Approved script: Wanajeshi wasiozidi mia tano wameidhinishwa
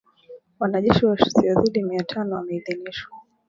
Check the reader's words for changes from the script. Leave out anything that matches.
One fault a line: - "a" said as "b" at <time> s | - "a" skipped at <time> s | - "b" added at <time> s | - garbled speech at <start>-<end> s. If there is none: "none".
none